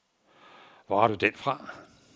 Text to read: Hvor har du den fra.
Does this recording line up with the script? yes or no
yes